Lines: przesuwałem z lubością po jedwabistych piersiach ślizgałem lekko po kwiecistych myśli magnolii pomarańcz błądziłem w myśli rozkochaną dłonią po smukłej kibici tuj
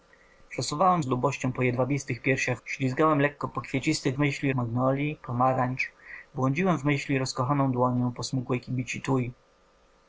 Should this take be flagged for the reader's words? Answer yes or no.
no